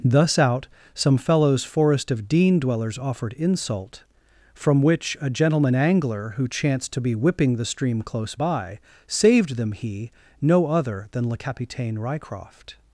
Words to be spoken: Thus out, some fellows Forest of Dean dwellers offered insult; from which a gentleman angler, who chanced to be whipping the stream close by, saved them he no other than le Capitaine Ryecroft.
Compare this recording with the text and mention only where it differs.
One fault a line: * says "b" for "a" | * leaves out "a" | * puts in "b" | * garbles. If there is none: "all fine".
all fine